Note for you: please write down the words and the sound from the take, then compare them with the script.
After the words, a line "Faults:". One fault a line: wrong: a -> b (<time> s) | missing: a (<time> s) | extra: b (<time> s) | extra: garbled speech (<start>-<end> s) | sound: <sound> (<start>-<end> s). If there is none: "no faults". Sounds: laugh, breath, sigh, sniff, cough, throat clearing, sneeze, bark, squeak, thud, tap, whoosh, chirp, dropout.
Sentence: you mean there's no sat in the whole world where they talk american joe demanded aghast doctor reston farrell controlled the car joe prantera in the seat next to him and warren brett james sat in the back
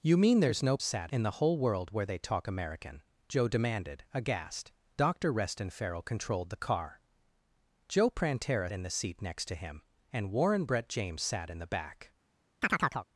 you mean there's no sat in the whole world where they talk american joe demanded aghast doctor reston farrell controlled the car joe prantera in the seat next to him and warren brett james sat in the back
Faults:
sound: chirp (12.6-13.1 s)